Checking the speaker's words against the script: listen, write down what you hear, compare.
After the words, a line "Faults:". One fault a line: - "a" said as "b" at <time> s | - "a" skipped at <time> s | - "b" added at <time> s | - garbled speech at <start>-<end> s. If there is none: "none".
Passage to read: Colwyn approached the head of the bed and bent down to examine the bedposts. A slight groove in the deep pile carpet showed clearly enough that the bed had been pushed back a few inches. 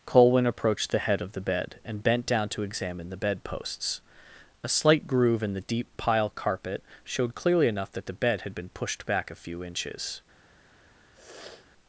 Colwyn approached the head of the bed and bent down to examine the bedposts. A slight groove in the deep pile carpet showed clearly enough that the bed had been pushed back a few inches.
Faults:
none